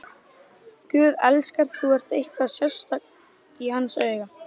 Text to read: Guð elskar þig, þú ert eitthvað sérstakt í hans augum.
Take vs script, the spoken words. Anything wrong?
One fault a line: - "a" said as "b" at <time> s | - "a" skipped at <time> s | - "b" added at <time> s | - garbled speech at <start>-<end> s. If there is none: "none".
- "þig" skipped at 1.7 s